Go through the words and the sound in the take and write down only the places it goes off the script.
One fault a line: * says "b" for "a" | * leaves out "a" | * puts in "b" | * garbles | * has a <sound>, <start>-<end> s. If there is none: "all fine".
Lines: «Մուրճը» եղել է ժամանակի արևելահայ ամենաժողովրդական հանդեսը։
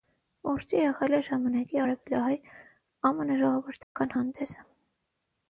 * has a dropout, 3.8-4.0 s